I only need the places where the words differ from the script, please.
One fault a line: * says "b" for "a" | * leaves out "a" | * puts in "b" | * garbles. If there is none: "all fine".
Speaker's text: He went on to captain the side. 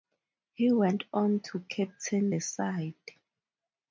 all fine